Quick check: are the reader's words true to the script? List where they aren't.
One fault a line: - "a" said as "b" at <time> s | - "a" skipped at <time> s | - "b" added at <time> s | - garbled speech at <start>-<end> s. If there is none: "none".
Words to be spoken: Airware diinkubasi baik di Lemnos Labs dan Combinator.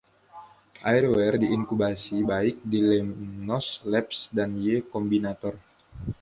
- "Y" added at 4.6 s